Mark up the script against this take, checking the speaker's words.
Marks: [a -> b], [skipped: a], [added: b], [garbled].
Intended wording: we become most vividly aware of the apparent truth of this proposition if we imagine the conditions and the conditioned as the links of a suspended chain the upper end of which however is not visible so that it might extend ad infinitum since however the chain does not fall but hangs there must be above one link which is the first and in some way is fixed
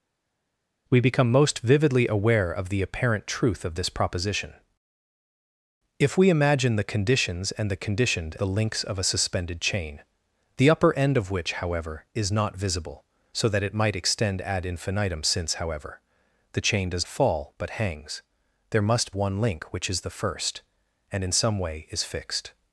we become most vividly aware of the apparent truth of this proposition if we imagine the conditions and the conditioned [skipped: as] the links of a suspended chain the upper end of which however is not visible so that it might extend ad infinitum since however the chain does [skipped: not] fall but hangs there must [skipped: be above] one link which is the first and in some way is fixed